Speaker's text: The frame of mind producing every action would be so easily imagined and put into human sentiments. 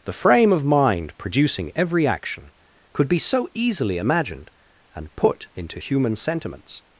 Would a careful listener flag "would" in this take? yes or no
yes